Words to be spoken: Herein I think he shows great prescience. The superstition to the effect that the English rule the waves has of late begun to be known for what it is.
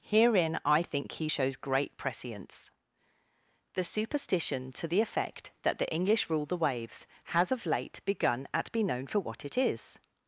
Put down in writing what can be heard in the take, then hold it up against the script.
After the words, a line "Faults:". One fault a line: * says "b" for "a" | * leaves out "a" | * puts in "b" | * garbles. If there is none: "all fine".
Herein I think he shows great prescience. The superstition to the effect that the English rule the waves has of late begun at be known for what it is.
Faults:
* says "at" for "to"